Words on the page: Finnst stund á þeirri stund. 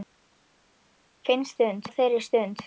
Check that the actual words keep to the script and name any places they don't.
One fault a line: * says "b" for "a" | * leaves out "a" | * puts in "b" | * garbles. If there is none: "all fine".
all fine